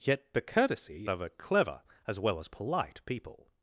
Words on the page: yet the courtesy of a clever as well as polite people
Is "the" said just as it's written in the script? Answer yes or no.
yes